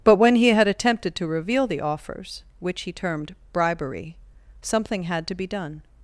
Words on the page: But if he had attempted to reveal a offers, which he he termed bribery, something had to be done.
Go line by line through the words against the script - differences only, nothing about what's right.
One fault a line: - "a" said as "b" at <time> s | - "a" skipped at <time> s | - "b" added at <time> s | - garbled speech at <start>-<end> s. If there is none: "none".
- "if" said as "when" at 0.2 s
- "a" said as "the" at 1.7 s
- "he" skipped at 2.9 s